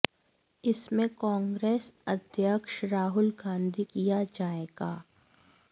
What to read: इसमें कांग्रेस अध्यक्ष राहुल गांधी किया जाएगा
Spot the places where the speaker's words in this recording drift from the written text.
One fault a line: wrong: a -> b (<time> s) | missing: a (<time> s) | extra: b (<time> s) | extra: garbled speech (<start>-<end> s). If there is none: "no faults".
no faults